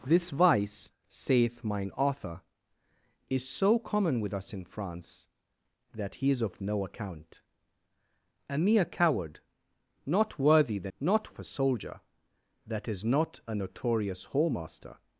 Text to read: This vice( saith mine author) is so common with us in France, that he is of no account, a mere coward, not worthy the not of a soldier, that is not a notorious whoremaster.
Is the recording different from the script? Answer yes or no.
no